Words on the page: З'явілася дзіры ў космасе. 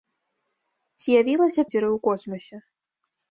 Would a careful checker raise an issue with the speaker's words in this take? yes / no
no